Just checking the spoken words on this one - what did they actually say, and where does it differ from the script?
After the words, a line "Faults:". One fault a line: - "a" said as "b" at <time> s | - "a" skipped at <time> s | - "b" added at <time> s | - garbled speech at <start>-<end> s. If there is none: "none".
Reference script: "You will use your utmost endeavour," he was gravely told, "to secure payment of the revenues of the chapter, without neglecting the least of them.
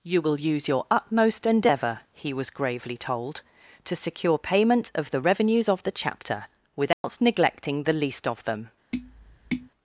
"You will use your utmost endeavour," he was gravely told, "to secure payment of the revenues of the chapter, without neglecting the least of them.
Faults:
none